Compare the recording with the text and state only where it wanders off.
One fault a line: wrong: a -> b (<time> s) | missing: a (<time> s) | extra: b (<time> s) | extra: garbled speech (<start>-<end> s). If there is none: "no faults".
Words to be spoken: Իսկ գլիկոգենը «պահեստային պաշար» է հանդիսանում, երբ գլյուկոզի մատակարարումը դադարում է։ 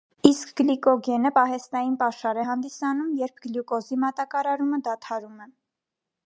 no faults